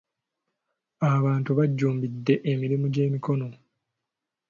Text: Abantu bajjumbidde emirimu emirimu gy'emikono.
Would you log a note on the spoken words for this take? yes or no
yes